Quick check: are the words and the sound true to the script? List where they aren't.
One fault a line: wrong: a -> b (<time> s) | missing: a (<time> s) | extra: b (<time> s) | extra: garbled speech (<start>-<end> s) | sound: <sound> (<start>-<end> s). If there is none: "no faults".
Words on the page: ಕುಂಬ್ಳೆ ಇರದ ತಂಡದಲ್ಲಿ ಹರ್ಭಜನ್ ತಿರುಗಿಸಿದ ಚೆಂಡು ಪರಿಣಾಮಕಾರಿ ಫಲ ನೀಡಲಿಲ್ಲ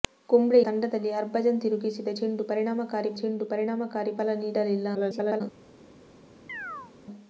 missing: ಇರದ (0.6 s)
extra: ಚೆಂಡು ಪರಿಣಾಮಕಾರಿ (3.2 s)
extra: garbled speech (4.9-5.4 s)
sound: chirp (6.5-6.9 s)